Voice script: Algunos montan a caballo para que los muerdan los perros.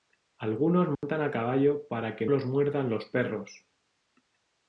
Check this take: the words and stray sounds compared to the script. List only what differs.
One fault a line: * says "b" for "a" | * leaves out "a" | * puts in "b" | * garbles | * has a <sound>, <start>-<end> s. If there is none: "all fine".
* has a dropout, 0.9-1.0 s